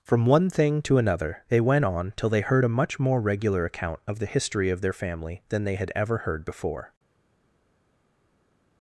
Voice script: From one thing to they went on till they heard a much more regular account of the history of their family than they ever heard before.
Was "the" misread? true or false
false